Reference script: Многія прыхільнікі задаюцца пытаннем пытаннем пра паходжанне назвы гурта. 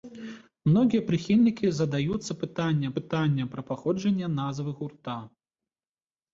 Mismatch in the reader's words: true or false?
false